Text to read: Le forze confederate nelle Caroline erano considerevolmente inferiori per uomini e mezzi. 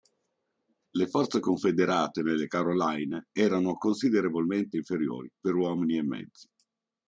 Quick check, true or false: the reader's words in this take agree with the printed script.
true